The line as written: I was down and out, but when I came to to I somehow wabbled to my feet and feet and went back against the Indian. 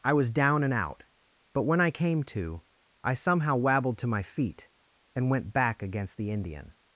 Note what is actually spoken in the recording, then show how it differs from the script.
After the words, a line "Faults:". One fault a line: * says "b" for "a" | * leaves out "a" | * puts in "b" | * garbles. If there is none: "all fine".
I was down and out, but when I came to I somehow wabbled to my feet and went back against the Indian.
Faults:
* leaves out "to"
* leaves out "feet and"